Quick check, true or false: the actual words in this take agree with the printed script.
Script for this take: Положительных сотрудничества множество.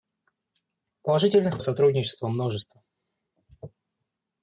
true